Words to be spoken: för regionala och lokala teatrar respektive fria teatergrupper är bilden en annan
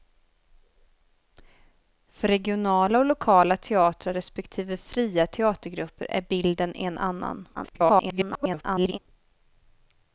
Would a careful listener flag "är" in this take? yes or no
no